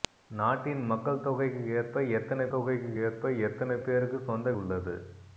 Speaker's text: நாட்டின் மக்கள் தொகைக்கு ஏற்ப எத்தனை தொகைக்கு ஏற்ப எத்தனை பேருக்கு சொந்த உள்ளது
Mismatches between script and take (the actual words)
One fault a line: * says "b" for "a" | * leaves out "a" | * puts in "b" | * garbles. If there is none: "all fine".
all fine